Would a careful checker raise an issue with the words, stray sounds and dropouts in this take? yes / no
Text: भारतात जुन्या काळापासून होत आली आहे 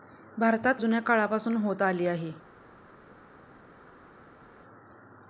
no